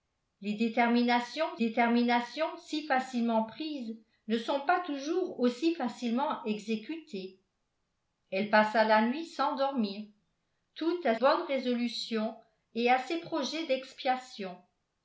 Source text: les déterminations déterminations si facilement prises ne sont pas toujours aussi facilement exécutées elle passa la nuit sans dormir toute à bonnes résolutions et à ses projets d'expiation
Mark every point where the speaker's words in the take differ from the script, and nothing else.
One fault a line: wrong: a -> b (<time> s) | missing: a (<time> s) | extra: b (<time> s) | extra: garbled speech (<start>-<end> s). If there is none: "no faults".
no faults